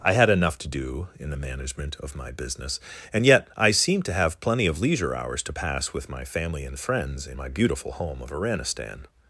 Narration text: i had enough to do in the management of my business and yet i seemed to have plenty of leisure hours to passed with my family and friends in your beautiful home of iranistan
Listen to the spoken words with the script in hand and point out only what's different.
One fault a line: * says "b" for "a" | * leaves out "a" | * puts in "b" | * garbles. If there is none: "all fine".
* says "pass" for "passed"
* says "my" for "your"